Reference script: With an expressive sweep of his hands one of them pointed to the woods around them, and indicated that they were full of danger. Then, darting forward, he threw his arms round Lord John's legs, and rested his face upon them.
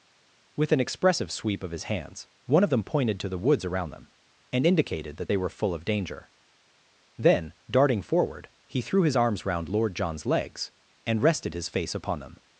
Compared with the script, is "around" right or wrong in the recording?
right